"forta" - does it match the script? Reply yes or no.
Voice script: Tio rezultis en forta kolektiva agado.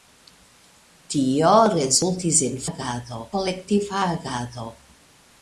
no